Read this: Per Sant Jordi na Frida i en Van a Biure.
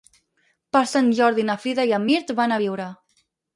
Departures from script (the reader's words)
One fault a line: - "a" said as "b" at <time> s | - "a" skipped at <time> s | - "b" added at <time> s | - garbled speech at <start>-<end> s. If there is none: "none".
- "Mirt" added at 2.1 s